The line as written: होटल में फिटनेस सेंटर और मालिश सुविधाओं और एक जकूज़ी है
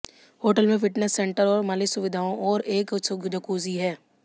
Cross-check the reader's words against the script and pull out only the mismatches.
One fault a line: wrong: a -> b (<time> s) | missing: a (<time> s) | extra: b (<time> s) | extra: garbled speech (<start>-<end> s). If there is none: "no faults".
no faults